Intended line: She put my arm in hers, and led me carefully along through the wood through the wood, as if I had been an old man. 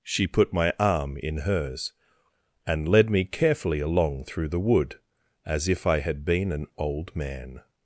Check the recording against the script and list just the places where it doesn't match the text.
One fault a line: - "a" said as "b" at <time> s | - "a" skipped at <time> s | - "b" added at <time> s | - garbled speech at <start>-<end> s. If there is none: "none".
- "through the wood" skipped at 5.0 s